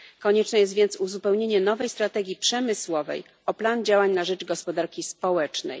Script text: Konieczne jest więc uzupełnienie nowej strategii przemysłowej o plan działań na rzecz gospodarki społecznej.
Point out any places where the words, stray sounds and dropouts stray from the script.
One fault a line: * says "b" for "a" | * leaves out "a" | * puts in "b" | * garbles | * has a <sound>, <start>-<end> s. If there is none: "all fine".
all fine